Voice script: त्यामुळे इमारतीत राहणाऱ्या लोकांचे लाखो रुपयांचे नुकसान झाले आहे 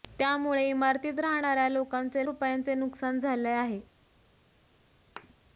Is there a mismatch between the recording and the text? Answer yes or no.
yes